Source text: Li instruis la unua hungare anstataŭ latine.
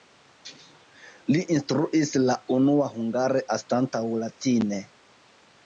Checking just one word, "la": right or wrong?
right